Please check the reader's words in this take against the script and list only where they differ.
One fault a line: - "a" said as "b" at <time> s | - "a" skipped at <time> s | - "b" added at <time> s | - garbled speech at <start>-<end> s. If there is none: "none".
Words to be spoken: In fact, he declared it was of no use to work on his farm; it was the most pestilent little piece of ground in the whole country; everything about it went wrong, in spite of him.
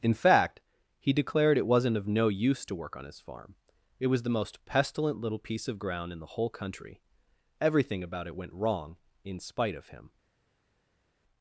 - "was" said as "wasn't" at 1.7 s